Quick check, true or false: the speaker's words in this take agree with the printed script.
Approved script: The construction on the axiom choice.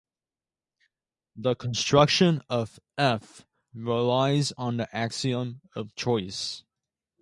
false